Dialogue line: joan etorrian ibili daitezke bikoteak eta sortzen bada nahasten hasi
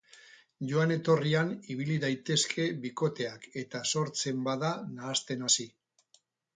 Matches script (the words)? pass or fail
pass